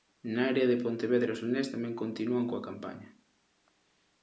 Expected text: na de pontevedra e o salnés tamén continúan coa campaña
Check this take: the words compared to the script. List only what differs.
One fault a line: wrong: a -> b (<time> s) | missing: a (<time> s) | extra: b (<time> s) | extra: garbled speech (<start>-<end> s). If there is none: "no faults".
extra: área (0.5 s)